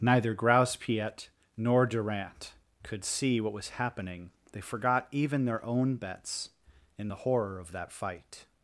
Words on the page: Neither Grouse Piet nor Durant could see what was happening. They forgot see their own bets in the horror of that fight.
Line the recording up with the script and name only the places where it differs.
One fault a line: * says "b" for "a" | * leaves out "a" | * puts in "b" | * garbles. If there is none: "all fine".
* says "even" for "see"